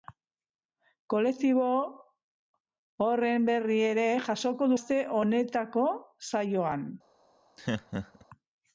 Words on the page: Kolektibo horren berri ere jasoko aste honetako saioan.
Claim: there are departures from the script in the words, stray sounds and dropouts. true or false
true